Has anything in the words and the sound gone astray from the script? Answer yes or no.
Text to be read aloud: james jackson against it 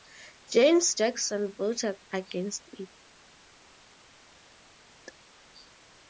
yes